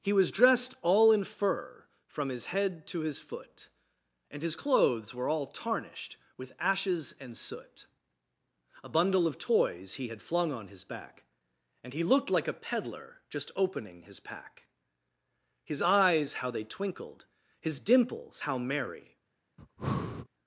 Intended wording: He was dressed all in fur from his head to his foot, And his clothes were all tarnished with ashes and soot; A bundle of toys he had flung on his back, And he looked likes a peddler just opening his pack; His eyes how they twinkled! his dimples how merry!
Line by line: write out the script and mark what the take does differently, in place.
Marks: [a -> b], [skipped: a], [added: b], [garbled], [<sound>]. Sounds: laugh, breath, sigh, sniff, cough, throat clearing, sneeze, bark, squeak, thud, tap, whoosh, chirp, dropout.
He was dressed all in fur from his head to his foot, And his clothes were all tarnished with ashes and soot; A bundle of toys he had flung on his back, And he looked [likes -> like] a peddler just opening his pack; His eyes how they twinkled! his dimples how merry! [breath]